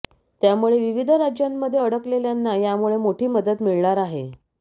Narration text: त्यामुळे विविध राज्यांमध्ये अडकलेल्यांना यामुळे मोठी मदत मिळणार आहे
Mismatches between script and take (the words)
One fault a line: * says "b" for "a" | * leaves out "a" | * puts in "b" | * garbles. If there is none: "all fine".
all fine